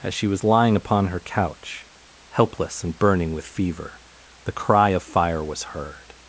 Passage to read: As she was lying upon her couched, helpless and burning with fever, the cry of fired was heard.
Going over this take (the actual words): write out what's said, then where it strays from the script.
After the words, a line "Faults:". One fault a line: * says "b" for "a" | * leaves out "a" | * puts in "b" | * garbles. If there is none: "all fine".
As she was lying upon her couch, helpless and burning with fever, the cry of fire was heard.
Faults:
* says "couch" for "couched"
* says "fire" for "fired"